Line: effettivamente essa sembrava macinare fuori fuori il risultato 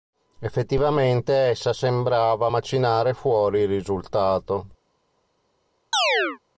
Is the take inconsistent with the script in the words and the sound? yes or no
yes